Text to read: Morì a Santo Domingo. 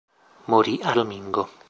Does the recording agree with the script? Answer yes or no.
no